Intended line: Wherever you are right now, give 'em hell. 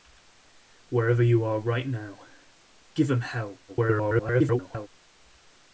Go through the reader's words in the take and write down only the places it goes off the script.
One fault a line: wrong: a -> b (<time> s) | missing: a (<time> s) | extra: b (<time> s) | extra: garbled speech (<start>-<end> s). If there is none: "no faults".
extra: garbled speech (3.7-4.9 s)